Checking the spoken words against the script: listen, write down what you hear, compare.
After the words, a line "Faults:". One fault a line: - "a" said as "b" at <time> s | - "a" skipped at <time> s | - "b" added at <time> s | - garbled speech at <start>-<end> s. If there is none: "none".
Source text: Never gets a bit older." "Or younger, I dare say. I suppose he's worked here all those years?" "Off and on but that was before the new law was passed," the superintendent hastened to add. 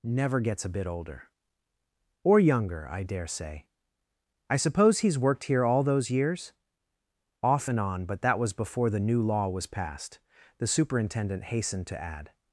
Never gets a bit older." "Or younger, I dare say. I suppose he's worked here all those years?" "Off and on but that was before the new law was passed," the superintendent hastened to add.
Faults:
none